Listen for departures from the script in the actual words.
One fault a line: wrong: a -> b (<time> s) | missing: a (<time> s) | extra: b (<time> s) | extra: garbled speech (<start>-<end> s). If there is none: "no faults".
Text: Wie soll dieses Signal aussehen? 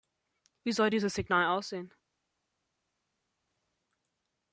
no faults